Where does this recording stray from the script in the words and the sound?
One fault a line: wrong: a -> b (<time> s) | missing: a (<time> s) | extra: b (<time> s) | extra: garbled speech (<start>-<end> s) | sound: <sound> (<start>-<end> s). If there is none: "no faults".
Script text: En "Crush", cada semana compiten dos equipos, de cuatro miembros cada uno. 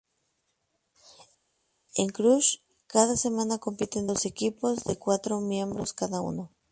no faults